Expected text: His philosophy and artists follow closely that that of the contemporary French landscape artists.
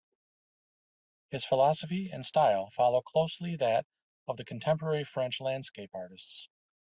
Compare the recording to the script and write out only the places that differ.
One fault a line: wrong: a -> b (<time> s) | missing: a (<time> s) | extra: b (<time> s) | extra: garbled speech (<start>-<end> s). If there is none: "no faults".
wrong: artists -> style (2.2 s)
missing: that (3.9 s)